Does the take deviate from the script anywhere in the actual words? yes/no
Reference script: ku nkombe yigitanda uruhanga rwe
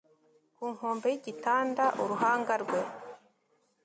no